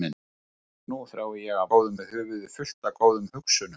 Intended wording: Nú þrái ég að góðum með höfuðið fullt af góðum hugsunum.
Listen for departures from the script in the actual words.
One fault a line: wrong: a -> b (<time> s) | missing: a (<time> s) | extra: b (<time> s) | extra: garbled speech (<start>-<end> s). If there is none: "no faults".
no faults